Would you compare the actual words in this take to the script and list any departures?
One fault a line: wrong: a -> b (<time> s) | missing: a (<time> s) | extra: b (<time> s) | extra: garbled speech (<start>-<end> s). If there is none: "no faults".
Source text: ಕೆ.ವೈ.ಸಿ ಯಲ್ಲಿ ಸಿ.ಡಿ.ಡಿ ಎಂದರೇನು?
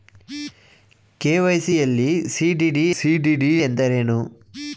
extra: ಸಿ.ಡಿ.ಡಿ (2.9 s)